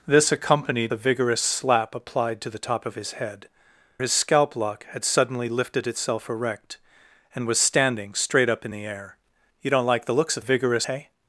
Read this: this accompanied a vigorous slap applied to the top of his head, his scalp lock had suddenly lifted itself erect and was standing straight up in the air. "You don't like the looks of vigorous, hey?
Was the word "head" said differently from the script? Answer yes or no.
no